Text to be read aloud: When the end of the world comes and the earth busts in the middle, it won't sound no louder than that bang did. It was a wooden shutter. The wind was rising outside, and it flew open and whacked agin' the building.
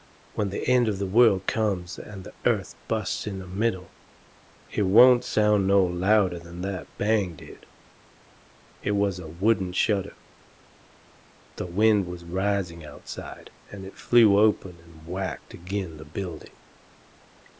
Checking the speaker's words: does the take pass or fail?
pass